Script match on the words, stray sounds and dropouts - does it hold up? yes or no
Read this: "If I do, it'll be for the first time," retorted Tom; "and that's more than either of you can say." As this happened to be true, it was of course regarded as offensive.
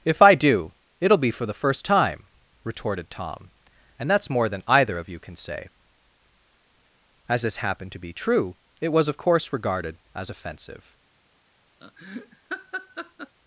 no